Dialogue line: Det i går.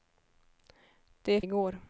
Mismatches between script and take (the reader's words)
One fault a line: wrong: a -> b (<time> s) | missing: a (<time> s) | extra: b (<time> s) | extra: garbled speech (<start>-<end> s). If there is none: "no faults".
no faults